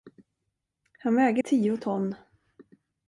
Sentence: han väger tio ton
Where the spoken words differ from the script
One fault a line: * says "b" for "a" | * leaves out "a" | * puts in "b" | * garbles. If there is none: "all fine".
all fine